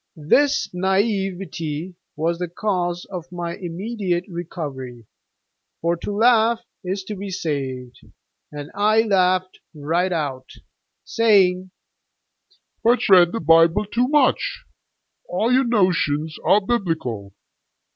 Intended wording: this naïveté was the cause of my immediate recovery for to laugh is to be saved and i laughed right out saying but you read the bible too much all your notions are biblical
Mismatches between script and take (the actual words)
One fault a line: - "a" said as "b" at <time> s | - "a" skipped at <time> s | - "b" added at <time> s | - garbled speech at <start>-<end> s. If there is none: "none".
- "you" skipped at 13.1 s